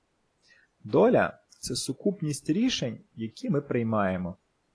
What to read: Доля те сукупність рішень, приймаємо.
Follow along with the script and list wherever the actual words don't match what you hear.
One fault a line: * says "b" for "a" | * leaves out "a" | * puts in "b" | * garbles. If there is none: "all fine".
* says "це" for "те"
* puts in "які ми"